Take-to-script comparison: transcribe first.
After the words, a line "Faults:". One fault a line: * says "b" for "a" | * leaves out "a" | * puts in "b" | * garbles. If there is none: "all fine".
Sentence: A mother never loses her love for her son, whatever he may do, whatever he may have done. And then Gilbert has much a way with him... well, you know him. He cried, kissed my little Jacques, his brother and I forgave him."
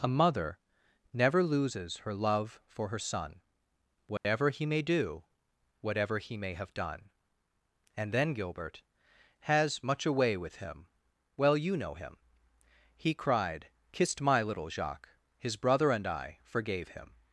A mother never loses her love for her son, whatever he may do, whatever he may have done. And then Gilbert has much a way with him... well, you know him. He cried, kissed my little Jacques, his brother and I forgave him."
Faults:
all fine